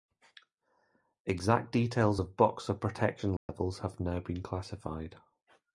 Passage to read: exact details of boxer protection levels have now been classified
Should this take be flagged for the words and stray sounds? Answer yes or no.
yes